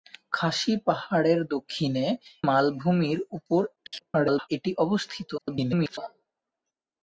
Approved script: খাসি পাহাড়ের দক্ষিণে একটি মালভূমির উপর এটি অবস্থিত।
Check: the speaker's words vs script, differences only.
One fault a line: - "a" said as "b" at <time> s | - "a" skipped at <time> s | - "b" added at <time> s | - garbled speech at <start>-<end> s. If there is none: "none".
- "একটি" skipped at 2.0 s
- garbled speech at 3.8-4.5 s
- garbled speech at 5.4-6.0 s